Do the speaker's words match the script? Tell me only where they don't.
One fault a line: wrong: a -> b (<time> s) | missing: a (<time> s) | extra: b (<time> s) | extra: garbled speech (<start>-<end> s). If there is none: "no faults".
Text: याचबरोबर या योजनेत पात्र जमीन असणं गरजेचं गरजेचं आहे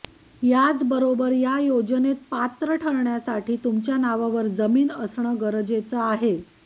extra: ठरण्यासाठी तुमच्या नावावर (2.7 s)
missing: गरजेचं (6.0 s)